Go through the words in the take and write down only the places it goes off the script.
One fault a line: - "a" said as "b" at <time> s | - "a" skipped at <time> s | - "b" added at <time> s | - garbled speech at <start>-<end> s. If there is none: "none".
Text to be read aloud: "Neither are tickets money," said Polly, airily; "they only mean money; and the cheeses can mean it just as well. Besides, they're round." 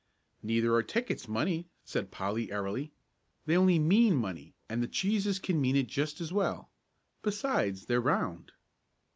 none